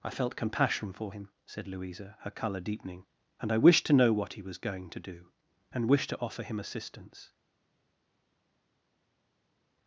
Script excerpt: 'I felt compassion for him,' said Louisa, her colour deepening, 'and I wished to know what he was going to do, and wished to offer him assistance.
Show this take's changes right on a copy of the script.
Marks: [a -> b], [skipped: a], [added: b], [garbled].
'I felt compassion for him,' said Louisa, her colour deepening, 'and I wished to know what he was going to do, and wished to offer him assistance.